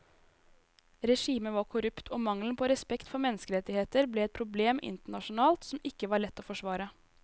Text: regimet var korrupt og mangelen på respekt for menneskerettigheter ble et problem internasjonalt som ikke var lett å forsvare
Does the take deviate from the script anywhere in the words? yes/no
no